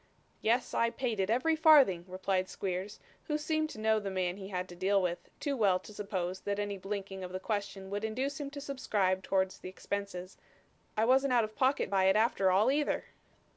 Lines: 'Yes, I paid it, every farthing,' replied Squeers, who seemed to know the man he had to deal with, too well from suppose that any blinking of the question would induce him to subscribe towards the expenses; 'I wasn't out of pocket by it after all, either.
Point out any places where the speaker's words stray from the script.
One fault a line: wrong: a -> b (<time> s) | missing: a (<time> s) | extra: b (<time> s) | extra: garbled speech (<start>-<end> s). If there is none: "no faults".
wrong: from -> to (5.8 s)